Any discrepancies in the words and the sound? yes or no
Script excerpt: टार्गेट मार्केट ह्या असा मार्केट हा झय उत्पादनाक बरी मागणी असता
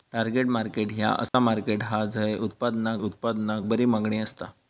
yes